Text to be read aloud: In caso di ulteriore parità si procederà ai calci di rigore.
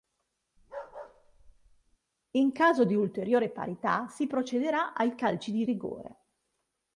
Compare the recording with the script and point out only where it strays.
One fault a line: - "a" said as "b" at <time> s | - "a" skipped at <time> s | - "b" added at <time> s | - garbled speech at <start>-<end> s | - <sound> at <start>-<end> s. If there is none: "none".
- bark at 0.6-2.0 s